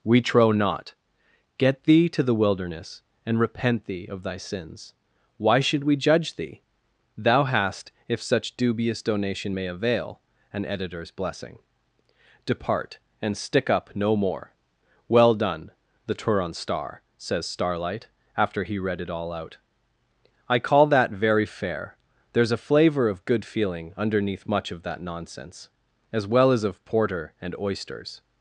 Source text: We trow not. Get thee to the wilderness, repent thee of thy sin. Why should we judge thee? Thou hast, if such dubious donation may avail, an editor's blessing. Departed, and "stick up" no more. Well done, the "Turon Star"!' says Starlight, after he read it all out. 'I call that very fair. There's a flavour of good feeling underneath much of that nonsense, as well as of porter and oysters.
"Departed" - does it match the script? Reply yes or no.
no